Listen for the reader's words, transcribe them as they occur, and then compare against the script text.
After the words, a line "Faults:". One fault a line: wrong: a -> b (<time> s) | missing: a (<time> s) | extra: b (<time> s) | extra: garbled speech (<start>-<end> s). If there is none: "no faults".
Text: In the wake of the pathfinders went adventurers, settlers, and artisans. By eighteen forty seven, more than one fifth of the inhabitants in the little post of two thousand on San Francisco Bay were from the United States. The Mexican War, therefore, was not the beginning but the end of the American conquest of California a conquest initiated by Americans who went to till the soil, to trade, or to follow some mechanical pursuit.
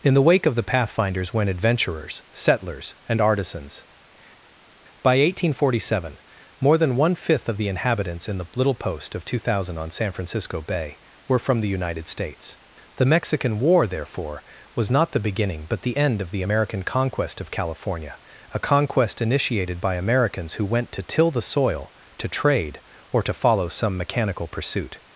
In the wake of the pathfinders went adventurers, settlers, and artisans. By eighteen forty seven, more than one fifth of the inhabitants in the little post of two thousand on San Francisco Bay were from the United States. The Mexican War, therefore, was not the beginning but the end of the American conquest of California a conquest initiated by Americans who went to till the soil, to trade, or to follow some mechanical pursuit.
Faults:
no faults